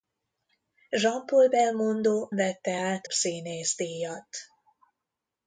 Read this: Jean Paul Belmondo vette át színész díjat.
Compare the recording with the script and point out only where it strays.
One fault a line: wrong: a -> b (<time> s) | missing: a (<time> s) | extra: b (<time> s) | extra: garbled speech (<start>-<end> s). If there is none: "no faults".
no faults